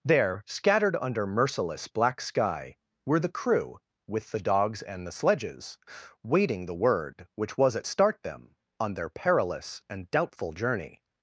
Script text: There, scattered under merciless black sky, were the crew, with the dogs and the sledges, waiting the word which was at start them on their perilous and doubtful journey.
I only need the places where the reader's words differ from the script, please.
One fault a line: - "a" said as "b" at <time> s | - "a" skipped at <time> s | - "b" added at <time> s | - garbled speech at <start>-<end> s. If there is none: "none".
none